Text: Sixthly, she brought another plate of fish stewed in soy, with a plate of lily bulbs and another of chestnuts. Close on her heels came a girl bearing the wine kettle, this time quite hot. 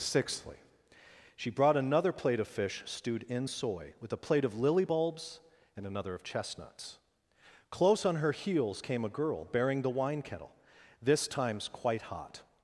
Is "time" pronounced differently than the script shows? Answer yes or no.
yes